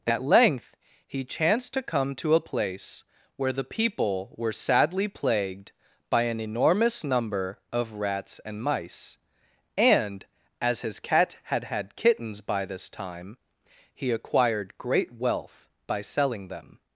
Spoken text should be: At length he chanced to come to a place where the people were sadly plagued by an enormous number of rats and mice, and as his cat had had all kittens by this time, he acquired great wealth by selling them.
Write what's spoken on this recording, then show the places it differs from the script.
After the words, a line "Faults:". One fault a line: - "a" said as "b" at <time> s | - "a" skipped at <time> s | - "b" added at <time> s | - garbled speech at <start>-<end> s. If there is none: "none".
At length he chanced to come to a place where the people were sadly plagued by an enormous number of rats and mice, and as his cat had had kittens by this time, he acquired great wealth by selling them.
Faults:
- "all" skipped at 11.9 s